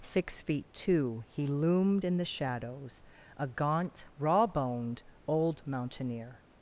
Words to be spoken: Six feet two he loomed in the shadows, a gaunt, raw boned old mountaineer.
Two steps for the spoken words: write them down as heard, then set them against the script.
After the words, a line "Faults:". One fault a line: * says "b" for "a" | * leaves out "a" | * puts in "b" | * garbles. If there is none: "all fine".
Six feet two he loomed in the shadows, a gaunt, raw boned old mountaineer.
Faults:
all fine